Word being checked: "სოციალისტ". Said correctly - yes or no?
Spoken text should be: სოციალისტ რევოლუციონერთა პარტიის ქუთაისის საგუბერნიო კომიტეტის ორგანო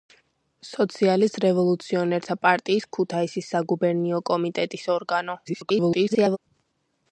yes